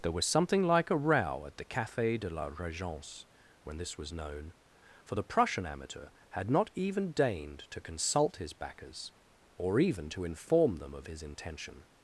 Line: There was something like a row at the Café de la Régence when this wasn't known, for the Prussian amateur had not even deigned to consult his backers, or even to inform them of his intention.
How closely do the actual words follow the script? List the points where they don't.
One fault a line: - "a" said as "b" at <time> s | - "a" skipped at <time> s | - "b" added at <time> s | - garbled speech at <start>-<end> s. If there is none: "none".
- "wasn't" said as "was" at 4.0 s